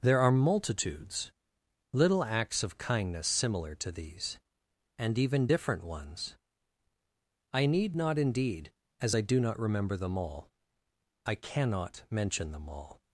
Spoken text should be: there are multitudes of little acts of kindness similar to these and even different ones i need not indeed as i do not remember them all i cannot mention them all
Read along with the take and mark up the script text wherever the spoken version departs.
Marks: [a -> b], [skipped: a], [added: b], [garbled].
there are multitudes [skipped: of] little acts of kindness similar to these and even different ones i need not indeed as i do not remember them all i cannot mention them all